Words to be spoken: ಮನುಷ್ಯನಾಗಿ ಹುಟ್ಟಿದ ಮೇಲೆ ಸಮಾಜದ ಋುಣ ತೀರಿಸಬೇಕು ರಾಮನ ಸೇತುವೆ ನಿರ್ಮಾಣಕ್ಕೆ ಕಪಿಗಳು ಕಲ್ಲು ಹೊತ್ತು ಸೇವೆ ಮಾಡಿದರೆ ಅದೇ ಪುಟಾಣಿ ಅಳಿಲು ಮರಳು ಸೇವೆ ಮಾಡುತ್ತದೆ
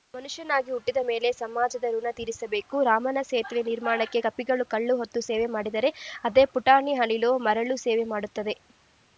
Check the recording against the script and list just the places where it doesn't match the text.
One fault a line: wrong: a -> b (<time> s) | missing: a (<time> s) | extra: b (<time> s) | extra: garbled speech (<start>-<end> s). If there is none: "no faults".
no faults